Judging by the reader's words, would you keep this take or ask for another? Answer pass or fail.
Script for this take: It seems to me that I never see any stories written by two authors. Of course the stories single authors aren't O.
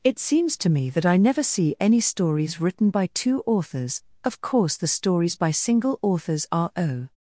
fail